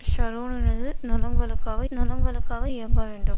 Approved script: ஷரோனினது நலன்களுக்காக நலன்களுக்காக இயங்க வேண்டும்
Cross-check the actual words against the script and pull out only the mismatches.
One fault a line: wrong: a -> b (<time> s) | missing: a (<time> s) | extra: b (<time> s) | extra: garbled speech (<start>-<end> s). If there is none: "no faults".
no faults